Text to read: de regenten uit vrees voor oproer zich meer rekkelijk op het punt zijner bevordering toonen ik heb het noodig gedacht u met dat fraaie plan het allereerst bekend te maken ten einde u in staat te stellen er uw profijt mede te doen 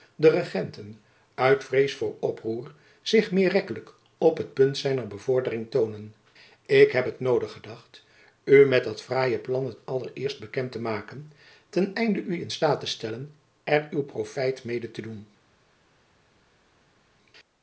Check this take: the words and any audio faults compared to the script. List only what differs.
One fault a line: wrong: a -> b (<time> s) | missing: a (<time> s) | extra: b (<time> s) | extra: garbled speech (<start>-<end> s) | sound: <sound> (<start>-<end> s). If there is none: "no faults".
no faults